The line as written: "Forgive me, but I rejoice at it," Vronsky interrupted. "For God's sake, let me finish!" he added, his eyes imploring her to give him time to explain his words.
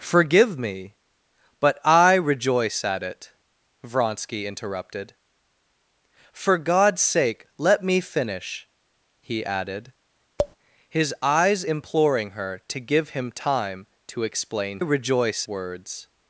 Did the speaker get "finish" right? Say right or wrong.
right